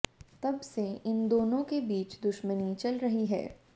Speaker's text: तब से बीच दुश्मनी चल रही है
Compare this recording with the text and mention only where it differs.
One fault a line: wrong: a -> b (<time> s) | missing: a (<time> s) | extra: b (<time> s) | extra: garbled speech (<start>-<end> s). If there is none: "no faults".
extra: इन दोनों के (1.1 s)